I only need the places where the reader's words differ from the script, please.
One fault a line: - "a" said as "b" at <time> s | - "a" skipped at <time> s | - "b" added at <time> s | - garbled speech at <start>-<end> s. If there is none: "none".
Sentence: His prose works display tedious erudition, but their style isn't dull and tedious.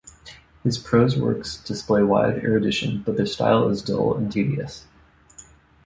- "tedious" said as "wide" at 2.0 s
- "isn't" said as "is" at 3.7 s